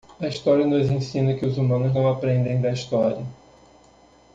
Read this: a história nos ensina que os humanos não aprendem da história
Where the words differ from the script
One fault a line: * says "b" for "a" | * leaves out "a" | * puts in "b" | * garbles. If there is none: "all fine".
all fine